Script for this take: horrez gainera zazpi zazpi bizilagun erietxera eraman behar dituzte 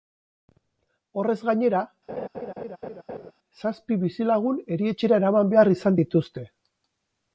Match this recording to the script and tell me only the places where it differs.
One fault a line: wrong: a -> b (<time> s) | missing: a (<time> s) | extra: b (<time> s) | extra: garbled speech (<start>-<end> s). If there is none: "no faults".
missing: zazpi (4.0 s)
extra: izan (5.8 s)